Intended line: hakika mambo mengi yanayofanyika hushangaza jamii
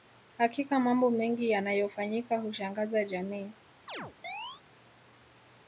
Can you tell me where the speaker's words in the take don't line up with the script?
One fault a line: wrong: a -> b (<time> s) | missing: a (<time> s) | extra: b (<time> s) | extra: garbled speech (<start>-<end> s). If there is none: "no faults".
no faults